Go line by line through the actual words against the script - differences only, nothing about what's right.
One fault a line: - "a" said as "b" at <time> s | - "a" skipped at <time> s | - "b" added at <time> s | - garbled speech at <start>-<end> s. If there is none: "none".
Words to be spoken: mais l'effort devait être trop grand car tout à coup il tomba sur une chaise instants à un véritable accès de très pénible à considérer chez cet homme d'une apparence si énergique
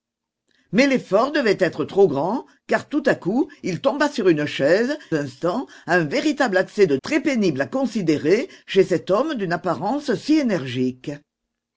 none